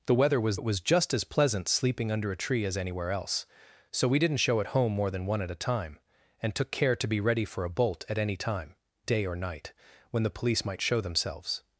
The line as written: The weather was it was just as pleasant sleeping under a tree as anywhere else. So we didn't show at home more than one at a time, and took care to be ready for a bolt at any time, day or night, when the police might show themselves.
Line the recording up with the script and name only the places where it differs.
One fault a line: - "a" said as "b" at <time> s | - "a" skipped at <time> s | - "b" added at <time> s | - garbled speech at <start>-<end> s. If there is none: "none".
none